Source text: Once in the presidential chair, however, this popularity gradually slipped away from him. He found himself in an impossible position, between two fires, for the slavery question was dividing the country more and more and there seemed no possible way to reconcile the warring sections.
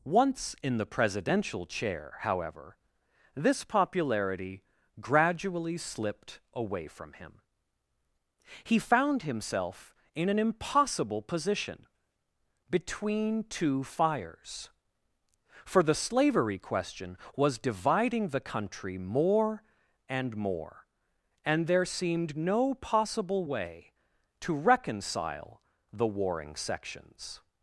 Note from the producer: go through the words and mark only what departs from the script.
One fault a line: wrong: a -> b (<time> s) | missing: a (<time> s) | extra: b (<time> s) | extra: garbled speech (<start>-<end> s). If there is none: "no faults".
no faults